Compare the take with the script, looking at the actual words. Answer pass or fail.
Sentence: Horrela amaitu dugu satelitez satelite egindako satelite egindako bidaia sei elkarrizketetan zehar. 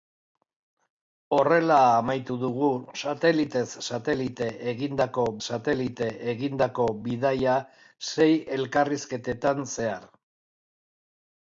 pass